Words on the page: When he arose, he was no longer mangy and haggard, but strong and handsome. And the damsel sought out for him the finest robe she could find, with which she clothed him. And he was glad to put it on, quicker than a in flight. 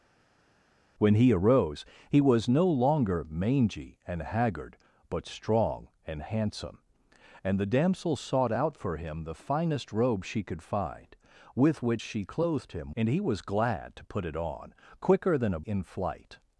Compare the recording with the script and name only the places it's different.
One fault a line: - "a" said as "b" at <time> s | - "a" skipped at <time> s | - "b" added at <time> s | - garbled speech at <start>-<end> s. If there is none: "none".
none